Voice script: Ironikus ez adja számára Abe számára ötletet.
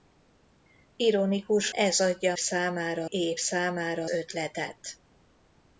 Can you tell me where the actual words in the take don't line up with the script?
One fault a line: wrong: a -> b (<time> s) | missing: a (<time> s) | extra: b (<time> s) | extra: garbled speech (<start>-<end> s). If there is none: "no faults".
no faults